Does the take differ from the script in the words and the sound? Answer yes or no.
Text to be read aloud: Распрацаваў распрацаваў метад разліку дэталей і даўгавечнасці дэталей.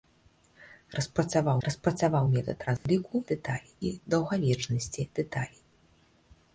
yes